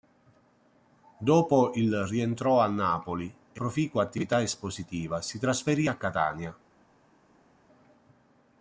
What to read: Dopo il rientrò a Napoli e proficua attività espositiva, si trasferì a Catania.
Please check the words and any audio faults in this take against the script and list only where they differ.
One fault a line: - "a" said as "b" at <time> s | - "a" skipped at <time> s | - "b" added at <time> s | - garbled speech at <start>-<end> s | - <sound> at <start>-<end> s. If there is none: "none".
none